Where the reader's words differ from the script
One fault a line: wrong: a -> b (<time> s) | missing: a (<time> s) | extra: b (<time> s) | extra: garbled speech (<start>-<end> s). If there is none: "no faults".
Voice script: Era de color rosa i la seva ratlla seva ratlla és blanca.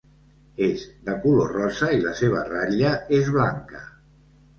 wrong: Era -> És (0.7 s)
missing: seva ratlla (2.9 s)